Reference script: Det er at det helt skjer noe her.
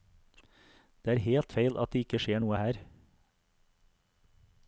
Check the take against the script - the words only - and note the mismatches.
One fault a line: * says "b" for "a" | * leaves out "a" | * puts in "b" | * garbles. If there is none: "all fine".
* puts in "helt feil"
* says "ikke" for "helt"